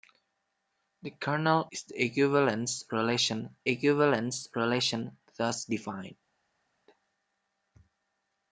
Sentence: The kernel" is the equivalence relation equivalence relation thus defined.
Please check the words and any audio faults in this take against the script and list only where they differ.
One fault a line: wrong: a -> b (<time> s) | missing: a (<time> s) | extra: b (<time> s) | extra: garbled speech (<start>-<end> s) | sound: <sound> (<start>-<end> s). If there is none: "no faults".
no faults